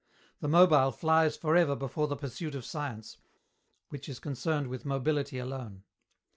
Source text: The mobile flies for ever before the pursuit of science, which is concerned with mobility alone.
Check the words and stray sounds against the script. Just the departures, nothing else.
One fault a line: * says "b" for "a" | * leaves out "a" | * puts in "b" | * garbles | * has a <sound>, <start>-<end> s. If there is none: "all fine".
all fine